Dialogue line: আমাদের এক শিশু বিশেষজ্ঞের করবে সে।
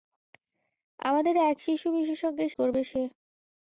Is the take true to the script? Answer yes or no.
yes